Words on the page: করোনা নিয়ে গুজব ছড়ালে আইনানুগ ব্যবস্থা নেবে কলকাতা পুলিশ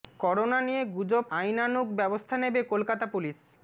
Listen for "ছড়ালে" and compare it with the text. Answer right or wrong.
wrong